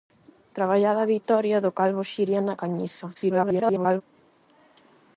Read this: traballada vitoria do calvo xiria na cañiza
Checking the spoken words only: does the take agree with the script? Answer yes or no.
no